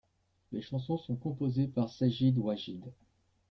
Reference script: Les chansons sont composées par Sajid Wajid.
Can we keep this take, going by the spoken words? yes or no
yes